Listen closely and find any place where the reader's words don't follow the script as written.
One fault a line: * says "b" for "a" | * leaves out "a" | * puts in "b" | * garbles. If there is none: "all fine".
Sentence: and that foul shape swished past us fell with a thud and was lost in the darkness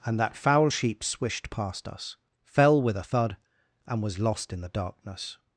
* says "sheep" for "shape"